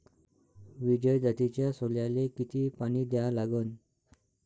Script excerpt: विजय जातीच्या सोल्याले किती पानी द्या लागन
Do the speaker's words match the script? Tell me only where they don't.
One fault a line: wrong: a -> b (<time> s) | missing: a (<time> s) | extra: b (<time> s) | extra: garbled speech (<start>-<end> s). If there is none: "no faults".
no faults